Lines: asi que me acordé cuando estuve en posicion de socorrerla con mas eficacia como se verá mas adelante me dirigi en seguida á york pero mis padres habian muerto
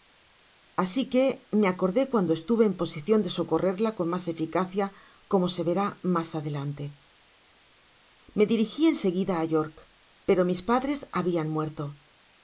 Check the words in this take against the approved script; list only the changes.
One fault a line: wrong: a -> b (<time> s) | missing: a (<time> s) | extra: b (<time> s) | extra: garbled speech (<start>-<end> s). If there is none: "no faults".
no faults